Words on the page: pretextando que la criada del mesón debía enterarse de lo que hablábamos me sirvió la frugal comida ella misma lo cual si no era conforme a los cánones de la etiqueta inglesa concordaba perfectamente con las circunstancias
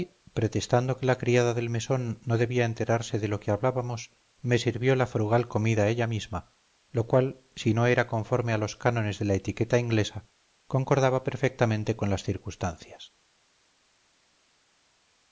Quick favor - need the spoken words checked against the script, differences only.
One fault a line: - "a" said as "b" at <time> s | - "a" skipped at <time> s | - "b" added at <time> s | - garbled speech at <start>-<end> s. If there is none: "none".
- "no" added at 2.2 s